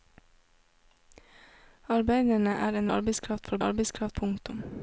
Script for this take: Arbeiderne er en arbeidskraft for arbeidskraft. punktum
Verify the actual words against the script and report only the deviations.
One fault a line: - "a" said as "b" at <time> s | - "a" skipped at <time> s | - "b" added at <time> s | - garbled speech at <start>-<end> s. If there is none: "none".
none